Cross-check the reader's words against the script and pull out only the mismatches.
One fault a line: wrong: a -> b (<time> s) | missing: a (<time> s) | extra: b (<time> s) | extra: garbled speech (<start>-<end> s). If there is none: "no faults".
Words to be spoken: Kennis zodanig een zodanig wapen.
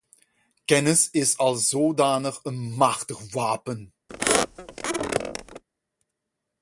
extra: is als (1.1 s)
wrong: zodanig -> machtig (2.6 s)